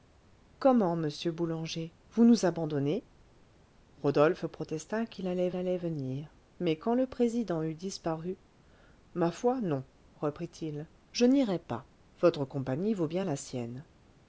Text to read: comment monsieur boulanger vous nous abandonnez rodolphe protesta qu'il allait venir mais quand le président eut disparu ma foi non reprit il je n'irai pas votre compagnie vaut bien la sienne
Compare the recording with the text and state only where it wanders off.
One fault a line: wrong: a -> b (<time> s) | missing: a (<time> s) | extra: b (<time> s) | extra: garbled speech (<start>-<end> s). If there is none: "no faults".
extra: allait (5.6 s)